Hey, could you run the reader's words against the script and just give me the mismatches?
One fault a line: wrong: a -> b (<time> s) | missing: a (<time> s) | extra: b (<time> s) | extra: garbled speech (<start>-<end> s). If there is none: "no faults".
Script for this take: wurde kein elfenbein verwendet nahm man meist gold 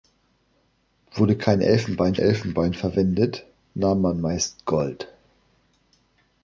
extra: elfenbein (2.2 s)